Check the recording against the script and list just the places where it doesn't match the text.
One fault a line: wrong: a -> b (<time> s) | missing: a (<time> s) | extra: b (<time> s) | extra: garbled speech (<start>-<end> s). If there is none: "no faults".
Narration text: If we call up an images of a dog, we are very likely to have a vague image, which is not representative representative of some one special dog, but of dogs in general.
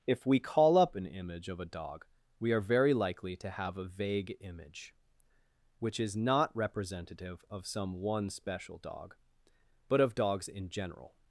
wrong: images -> image (1.1 s)
missing: representative (7.5 s)